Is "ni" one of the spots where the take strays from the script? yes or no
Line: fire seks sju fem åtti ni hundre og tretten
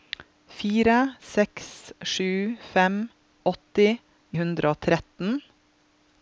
yes